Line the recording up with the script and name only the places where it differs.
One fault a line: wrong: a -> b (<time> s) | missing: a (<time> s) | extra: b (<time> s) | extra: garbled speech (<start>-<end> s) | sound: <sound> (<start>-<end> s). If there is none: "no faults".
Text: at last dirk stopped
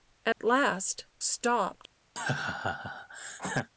sound: dropout (0.3-0.4 s)
missing: dirk (1.1 s)
sound: laugh (2.2-3.7 s)